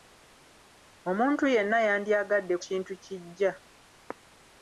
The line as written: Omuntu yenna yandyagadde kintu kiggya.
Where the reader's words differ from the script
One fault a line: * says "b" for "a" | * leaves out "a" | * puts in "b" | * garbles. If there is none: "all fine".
all fine